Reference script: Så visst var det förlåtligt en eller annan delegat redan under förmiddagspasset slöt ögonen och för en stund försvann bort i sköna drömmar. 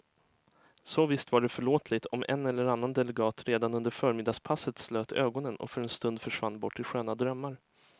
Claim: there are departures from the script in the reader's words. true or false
true